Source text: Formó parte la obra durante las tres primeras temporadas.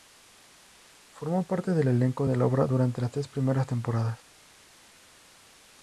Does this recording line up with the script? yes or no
no